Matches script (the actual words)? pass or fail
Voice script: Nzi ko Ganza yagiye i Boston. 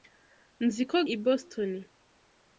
fail